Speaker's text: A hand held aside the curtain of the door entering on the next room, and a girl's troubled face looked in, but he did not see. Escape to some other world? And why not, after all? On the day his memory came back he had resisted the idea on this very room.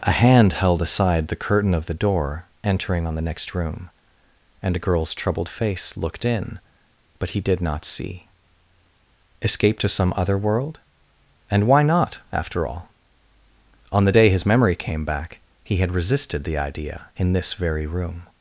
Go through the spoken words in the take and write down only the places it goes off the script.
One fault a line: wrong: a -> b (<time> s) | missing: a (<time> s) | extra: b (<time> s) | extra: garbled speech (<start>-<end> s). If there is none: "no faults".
wrong: on -> in (17.2 s)